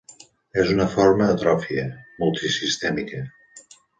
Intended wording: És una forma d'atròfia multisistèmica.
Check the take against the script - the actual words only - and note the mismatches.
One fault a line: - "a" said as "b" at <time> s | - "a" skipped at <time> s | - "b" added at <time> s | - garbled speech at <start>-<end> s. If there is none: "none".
none